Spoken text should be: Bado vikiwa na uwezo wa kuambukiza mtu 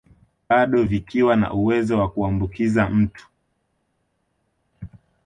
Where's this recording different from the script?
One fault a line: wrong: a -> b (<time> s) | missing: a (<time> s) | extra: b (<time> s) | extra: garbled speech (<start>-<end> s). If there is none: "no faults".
no faults